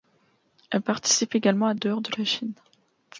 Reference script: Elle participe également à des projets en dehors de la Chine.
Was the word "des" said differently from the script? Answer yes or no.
yes